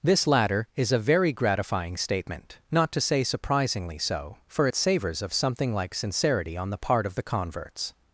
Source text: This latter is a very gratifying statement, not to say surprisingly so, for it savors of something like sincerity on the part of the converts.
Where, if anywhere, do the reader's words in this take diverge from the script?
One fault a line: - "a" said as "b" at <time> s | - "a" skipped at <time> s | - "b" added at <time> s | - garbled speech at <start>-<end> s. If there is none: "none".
none